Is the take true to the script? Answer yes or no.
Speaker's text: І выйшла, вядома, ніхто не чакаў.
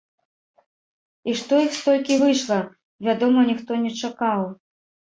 no